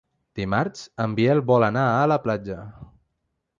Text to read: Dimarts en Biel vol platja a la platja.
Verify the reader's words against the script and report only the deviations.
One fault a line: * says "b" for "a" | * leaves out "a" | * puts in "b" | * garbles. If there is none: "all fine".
* says "anar" for "platja"